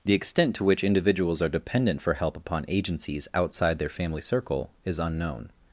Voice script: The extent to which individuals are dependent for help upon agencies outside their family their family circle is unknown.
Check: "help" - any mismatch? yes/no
no